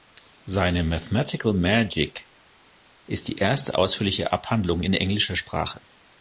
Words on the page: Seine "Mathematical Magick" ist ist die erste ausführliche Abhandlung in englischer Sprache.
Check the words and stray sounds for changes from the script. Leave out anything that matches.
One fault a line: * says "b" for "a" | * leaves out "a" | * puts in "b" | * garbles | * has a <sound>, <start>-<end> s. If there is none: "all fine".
* leaves out "ist"